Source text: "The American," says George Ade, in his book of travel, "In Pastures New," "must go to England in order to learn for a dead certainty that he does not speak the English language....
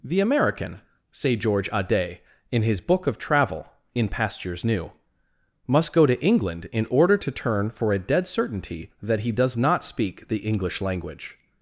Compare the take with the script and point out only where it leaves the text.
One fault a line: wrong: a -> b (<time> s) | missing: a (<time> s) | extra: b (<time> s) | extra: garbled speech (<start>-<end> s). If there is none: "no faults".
wrong: says -> say (1.1 s)
wrong: learn -> turn (7.3 s)